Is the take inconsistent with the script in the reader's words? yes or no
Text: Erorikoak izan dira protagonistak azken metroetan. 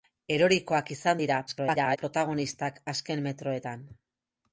yes